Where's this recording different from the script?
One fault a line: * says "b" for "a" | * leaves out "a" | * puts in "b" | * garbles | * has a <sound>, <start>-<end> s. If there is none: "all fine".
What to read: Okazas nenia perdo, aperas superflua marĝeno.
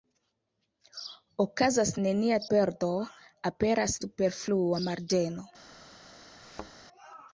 * has a thud, 6.4-6.7 s